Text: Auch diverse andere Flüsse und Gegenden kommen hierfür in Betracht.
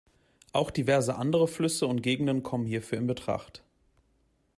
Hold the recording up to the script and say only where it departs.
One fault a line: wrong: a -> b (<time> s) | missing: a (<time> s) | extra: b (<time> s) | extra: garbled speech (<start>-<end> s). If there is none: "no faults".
no faults